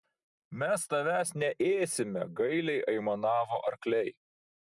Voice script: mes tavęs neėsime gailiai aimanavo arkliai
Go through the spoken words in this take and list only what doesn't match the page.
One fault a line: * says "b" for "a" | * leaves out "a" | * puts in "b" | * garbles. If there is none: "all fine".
all fine